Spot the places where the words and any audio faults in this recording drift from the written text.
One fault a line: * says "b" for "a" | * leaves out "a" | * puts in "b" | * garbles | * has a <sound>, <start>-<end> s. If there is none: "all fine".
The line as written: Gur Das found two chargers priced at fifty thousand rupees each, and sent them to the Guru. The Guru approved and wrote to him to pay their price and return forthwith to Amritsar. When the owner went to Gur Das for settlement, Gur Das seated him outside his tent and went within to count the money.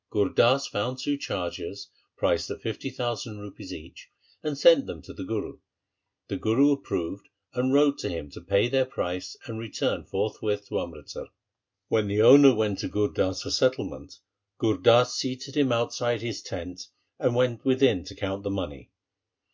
all fine